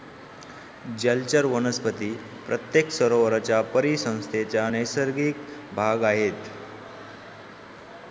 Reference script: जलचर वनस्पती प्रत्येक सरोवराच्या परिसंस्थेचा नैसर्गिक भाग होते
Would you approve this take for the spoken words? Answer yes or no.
no